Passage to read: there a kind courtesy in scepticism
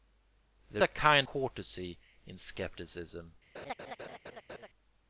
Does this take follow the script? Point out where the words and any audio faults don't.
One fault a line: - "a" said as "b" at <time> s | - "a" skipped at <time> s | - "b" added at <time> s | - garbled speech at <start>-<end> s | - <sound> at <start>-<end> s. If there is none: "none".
- laugh at 3.5-4.7 s